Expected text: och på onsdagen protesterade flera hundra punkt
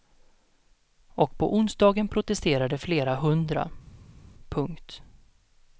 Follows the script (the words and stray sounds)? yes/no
yes